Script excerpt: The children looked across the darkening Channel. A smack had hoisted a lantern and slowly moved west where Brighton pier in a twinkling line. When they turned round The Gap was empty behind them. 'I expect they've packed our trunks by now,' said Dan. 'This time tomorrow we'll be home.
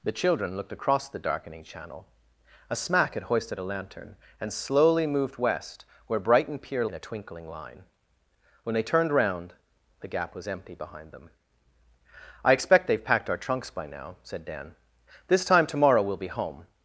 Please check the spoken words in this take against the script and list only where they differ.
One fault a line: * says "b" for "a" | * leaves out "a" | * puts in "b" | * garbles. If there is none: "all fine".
all fine